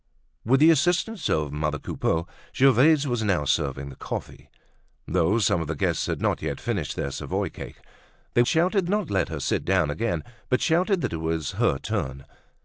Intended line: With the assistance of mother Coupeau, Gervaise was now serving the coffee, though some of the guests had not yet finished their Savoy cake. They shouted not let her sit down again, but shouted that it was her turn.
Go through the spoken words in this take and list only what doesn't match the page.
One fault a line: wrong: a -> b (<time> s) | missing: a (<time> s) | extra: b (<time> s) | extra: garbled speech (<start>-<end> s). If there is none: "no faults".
no faults